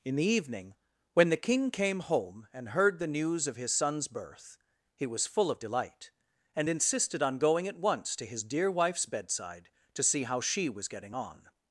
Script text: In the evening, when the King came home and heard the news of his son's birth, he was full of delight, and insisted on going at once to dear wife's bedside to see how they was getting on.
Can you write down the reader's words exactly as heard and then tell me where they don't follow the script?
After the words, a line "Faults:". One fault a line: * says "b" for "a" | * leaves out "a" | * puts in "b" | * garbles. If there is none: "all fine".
In the evening, when the King came home and heard the news of his son's birth, he was full of delight, and insisted on going at once to his dear wife's bedside to see how she was getting on.
Faults:
* puts in "his"
* says "she" for "they"